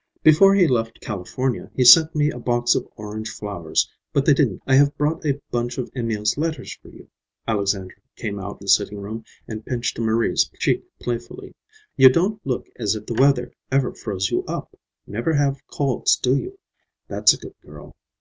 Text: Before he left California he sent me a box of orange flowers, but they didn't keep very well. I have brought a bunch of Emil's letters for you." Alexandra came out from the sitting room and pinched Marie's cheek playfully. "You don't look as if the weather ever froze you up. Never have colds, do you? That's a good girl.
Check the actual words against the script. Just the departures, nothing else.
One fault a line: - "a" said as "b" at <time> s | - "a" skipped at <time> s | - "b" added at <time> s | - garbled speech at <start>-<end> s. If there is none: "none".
- "keep very well" skipped at 4.6 s
- "from" skipped at 8.6 s